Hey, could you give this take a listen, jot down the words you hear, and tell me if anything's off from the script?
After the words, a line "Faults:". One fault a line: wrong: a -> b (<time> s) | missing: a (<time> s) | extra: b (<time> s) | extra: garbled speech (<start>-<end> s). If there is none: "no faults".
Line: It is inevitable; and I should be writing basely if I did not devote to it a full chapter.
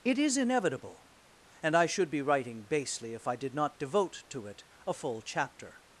It is inevitable; and I should be writing basely if I did not devote to it a full chapter.
Faults:
no faults